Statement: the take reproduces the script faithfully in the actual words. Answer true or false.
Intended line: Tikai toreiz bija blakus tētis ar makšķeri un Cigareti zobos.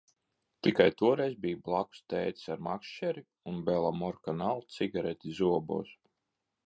false